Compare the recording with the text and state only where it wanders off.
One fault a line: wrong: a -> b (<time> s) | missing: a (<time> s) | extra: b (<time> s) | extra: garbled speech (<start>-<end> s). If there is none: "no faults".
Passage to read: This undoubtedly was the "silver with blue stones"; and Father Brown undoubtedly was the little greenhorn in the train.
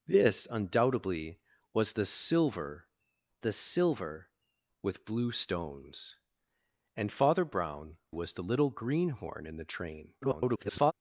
extra: the silver (3.4 s)
missing: undoubtedly (8.0 s)
extra: garbled speech (10.2-10.9 s)